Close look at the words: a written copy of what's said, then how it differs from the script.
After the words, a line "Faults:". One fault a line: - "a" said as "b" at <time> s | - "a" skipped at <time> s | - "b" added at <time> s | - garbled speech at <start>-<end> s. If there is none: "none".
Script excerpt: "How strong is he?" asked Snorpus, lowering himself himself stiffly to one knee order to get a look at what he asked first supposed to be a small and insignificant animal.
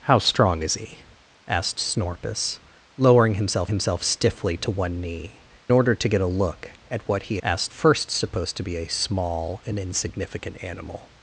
"How strong is he?" asked Snorpus, lowering himself himself stiffly to one knee order to get a look at what he asked first supposed to be a small and insignificant animal.
Faults:
none